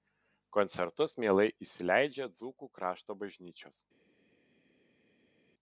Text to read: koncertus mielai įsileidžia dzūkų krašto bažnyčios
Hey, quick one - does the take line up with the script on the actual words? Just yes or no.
yes